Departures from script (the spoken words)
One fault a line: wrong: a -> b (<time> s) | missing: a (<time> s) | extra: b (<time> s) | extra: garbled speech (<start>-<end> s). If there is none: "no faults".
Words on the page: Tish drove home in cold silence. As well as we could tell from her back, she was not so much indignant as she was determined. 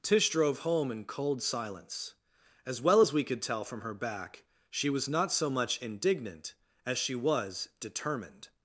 no faults